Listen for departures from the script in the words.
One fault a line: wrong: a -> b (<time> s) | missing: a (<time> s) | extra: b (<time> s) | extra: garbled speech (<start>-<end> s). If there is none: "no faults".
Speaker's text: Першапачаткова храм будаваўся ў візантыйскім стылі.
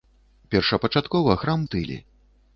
missing: будаваўся ў візантыйскім (1.7 s)